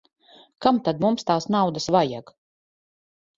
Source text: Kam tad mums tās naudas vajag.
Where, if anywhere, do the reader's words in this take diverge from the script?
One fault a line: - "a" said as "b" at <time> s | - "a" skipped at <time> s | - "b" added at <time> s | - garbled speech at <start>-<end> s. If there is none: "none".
none